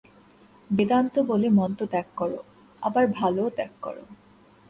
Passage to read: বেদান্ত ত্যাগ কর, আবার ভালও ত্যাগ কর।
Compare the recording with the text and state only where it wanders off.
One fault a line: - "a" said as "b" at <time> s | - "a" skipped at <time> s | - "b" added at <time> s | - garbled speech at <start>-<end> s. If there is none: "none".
- "বলে মন্দ" added at 1.2 s